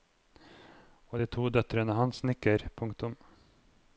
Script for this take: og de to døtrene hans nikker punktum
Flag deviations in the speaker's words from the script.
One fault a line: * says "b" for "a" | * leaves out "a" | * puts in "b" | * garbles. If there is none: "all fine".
all fine